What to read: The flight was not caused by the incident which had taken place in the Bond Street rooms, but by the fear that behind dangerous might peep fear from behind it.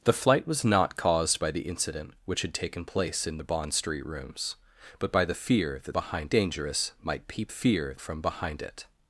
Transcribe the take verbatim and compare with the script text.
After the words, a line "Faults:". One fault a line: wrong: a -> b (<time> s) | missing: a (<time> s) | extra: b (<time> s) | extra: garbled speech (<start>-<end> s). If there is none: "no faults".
The flight was not caused by the incident which had taken place in the Bond Street rooms, but by the fear that behind dangerous might peep fear from behind it.
Faults:
no faults